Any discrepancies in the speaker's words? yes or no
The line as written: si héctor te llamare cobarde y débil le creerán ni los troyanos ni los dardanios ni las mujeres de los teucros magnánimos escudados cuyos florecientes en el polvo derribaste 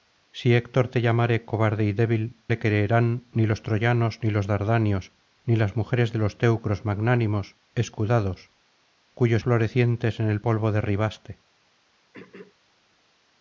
no